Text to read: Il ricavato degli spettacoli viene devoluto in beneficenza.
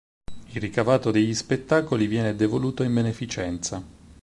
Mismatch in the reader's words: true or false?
false